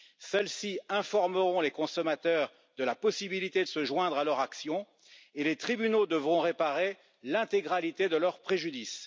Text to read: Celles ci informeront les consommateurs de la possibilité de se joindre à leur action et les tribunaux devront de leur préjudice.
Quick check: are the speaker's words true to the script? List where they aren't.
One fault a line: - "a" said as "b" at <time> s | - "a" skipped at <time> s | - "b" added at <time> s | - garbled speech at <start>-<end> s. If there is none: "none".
- "réparer l'intégralité" added at 6.4 s